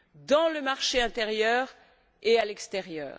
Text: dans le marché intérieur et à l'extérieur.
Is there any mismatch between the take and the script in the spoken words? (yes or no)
no